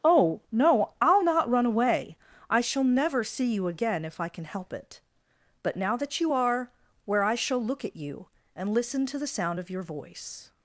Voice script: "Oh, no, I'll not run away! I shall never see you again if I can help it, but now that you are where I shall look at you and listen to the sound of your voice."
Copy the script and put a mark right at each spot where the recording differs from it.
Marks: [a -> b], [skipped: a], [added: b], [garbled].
"Oh, no, I'll not run away! I shall never see you again if I can help it, but now that you are where I shall look at you and listen to the sound of your voice."